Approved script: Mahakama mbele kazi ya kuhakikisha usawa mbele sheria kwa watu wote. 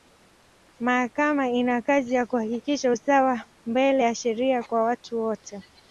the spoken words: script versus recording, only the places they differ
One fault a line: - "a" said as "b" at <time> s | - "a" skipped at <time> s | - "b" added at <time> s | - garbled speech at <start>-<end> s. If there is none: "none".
- "mbele" said as "ina" at 1.5 s
- "ya" added at 4.0 s